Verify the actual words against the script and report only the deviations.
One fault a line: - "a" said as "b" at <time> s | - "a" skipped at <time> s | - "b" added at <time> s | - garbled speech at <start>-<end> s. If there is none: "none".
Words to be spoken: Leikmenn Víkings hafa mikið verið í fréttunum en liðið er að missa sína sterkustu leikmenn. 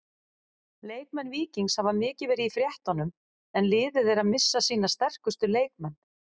none